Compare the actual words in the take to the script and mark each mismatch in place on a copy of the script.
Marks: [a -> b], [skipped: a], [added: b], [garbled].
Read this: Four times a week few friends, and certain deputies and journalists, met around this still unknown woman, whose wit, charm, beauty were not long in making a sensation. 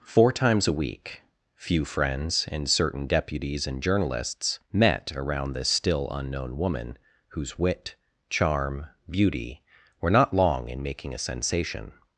Four times a week few friends, and certain deputies and journalists, met around this still unknown woman, whose wit, charm, beauty were not long in making a sensation.